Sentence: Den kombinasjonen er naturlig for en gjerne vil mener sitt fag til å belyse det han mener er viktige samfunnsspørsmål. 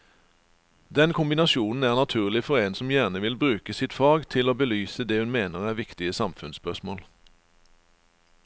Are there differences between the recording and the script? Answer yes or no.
yes